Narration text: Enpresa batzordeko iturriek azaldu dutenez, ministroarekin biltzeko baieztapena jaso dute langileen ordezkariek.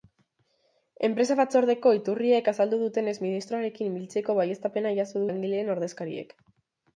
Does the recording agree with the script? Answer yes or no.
no